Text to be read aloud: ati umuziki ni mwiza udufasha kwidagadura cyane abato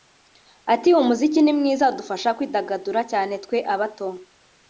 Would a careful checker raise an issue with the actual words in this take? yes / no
yes